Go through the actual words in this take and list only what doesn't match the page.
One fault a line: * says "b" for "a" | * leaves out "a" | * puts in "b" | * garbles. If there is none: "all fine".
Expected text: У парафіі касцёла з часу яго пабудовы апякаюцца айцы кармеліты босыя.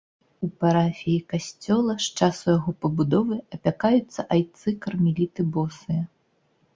all fine